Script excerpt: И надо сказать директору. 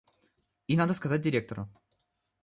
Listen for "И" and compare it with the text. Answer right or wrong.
right